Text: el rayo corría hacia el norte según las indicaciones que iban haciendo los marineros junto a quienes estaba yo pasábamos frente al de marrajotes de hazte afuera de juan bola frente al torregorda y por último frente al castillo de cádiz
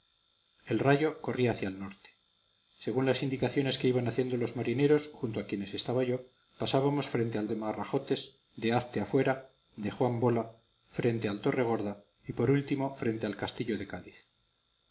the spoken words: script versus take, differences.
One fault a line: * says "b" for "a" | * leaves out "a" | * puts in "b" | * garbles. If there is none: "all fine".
all fine